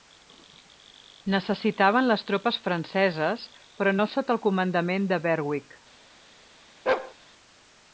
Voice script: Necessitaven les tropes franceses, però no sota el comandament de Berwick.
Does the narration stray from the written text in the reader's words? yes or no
no